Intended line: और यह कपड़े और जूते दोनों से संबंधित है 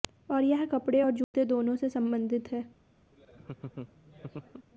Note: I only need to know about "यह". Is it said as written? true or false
true